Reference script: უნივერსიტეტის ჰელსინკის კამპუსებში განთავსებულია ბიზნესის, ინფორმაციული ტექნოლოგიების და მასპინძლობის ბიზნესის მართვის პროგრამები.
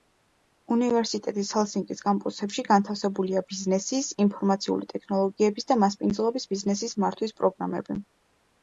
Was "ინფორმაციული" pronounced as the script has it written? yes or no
yes